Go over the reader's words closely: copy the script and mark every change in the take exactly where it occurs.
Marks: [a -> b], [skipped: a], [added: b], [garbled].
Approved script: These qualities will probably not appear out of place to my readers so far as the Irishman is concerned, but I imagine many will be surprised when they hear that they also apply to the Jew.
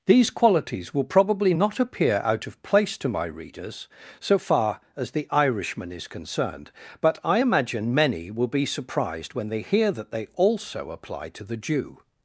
These qualities will probably not appear out of place to my readers so far as the Irishman is concerned, but I imagine many will be surprised when they hear that they also apply to the Jew.